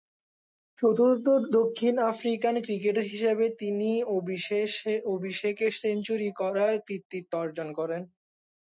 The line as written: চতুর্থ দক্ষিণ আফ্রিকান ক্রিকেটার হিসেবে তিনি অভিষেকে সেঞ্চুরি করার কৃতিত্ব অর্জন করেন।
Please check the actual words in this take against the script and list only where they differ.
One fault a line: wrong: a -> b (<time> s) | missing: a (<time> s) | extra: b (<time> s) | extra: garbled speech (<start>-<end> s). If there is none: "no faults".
no faults